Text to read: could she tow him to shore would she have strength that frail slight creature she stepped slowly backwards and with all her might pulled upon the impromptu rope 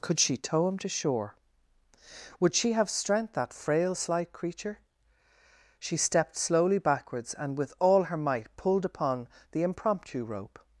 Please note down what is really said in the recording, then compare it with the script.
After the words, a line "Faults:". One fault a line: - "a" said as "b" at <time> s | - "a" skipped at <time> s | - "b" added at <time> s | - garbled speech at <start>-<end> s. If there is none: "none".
could she tow him to shore would she have strength that frail slight creature she stepped slowly backwards and with all her might pulled upon the impromptu rope
Faults:
none